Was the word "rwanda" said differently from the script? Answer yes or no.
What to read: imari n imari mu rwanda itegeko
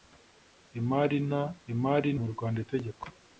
no